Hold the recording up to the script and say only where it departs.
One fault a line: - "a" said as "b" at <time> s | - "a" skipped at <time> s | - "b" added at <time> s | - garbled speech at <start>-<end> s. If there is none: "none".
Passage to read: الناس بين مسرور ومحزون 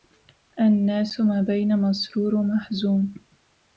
- "ما" added at 1.2 s